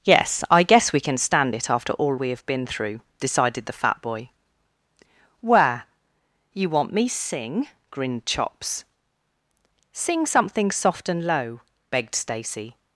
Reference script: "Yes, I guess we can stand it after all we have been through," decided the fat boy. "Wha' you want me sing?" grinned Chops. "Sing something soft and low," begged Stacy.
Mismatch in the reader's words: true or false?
true